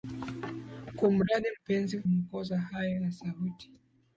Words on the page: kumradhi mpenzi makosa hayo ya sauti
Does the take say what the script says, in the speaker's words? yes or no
yes